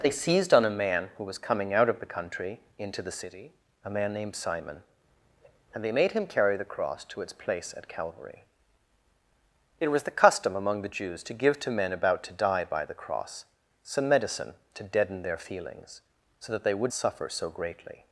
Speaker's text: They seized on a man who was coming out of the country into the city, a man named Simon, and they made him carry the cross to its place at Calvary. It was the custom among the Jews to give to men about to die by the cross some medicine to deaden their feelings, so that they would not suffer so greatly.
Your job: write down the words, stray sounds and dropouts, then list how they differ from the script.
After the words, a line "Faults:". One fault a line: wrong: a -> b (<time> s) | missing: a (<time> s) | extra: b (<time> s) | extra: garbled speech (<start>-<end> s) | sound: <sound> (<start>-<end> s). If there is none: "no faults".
They seized on a man who was coming out of the country into the city, a man named Simon, and they made him carry the cross to its place at Calvary. It was the custom among the Jews to give to men about to die by the cross some medicine to deaden their feelings, so that they would suffer so greatly.
Faults:
missing: not (16.9 s)